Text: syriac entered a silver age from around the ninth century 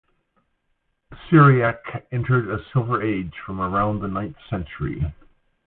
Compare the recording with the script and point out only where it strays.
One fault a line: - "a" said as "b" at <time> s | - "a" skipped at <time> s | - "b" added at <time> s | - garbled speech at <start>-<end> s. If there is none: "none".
none